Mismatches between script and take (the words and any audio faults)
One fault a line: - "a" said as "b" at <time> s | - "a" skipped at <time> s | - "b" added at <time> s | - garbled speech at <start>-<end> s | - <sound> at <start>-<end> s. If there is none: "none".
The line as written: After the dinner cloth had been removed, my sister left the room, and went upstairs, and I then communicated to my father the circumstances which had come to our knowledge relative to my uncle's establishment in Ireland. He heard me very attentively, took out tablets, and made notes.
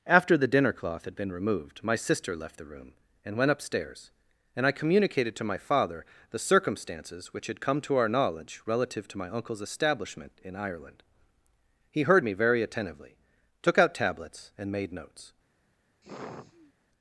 - "then" skipped at 4.7 s
- sigh at 16.0-16.7 s